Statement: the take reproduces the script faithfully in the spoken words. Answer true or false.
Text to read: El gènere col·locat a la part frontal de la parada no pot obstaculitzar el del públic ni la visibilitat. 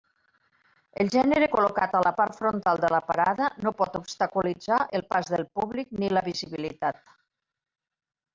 false